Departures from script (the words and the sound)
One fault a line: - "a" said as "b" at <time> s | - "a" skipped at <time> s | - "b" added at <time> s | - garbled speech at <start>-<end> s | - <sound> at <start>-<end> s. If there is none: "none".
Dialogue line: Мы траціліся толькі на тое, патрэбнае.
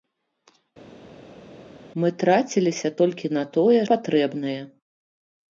none